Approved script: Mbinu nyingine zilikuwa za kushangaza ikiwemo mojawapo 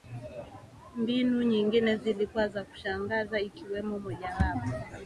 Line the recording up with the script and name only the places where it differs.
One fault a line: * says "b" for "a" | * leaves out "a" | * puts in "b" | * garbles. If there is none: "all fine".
all fine